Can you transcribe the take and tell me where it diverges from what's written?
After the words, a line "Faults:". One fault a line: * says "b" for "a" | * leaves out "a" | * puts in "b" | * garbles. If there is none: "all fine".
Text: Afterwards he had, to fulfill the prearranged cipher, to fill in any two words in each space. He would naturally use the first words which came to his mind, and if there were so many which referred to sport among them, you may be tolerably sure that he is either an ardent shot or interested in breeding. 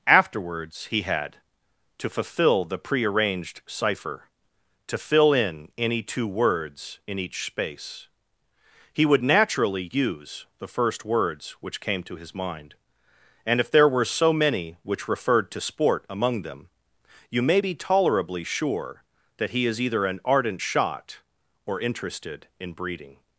Afterwards he had, to fulfill the prearranged cipher, to fill in any two words in each space. He would naturally use the first words which came to his mind, and if there were so many which referred to sport among them, you may be tolerably sure that he is either an ardent shot or interested in breeding.
Faults:
all fine